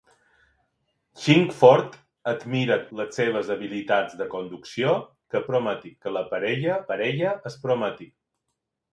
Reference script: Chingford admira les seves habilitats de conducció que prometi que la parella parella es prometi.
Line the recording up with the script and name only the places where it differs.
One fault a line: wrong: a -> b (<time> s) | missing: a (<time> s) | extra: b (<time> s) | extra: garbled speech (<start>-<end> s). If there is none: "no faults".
no faults